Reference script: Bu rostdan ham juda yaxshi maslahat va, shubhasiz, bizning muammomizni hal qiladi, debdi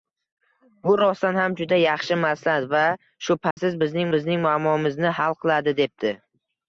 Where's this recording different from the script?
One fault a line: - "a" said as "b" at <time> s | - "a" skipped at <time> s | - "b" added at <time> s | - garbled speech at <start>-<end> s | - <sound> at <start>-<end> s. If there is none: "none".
- dropout at 3.5-3.6 s
- "bizning" added at 4.2 s